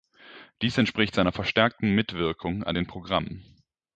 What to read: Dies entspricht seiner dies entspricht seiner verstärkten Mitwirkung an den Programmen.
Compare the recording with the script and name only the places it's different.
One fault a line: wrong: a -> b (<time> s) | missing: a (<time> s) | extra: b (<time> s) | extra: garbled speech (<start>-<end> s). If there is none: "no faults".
missing: dies entspricht seiner (1.3 s)